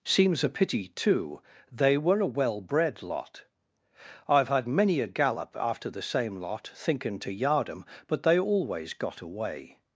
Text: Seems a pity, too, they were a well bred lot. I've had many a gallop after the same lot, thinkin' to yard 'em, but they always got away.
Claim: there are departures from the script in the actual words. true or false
false